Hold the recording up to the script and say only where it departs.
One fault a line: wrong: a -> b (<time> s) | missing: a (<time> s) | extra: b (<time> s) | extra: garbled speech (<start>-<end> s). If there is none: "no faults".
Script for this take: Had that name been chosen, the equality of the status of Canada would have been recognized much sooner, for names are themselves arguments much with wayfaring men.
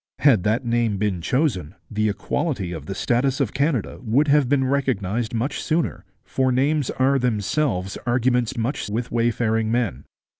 no faults